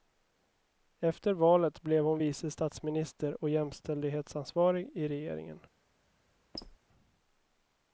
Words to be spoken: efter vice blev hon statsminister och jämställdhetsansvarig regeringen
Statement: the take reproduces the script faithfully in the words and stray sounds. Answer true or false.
false